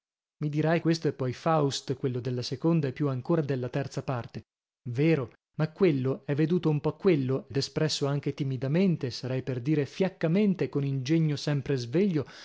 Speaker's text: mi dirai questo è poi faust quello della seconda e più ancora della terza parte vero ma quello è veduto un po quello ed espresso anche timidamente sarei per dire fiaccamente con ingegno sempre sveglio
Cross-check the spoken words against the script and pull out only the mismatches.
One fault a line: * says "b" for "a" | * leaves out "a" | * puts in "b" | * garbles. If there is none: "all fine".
all fine